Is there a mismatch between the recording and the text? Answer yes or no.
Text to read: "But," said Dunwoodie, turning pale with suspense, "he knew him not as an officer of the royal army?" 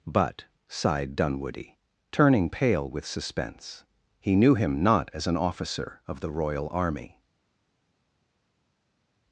yes